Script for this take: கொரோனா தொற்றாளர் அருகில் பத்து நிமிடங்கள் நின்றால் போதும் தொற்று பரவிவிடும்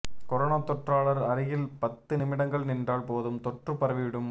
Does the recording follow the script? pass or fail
pass